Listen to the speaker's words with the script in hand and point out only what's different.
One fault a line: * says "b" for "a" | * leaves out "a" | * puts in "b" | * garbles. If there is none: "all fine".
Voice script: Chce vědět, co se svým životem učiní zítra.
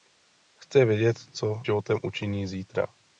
* leaves out "se svým"